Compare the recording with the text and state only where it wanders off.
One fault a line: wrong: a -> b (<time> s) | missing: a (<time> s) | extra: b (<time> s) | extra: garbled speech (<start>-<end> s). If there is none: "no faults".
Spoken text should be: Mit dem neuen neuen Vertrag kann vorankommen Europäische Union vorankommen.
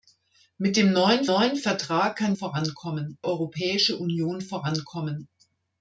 no faults